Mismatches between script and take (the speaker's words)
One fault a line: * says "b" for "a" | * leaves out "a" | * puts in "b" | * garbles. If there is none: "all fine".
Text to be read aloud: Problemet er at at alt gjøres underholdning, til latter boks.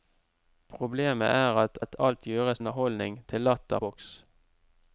all fine